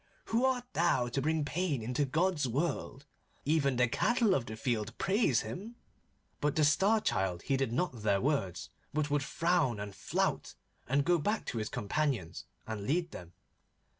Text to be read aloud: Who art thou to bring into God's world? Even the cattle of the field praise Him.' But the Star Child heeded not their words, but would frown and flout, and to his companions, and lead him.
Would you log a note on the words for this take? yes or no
yes